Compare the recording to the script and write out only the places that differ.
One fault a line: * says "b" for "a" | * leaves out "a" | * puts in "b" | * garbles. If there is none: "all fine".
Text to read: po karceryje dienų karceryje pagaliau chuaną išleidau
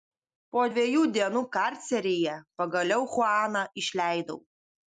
* says "dviejų" for "karceryje"